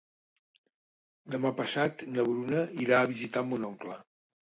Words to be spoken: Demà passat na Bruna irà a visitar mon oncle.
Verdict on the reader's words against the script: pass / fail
pass